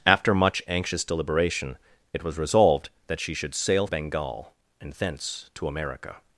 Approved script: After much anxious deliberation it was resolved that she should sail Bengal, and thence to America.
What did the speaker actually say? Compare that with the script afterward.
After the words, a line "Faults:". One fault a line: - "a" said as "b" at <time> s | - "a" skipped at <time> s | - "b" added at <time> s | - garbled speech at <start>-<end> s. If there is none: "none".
After much anxious deliberation it was resolved that she should sail Bengal, and thence to America.
Faults:
none